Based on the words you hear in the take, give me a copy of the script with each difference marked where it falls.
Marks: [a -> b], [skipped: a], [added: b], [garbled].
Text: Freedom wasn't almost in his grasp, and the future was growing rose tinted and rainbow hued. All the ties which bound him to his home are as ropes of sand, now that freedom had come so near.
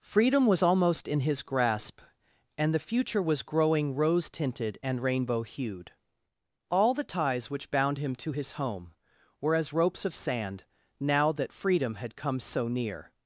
Freedom [wasn't -> was] almost in his grasp, and the future was growing rose tinted and rainbow hued. All the ties which bound him to his home [are -> were] as ropes of sand, now that freedom had come so near.